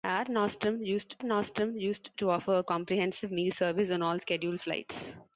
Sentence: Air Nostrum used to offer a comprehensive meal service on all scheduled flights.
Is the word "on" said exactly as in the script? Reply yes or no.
yes